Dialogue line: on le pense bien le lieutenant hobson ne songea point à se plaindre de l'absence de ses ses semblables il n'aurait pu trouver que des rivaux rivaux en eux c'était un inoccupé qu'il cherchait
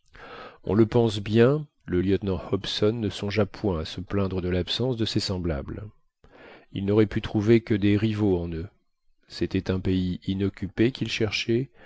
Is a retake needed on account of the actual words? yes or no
yes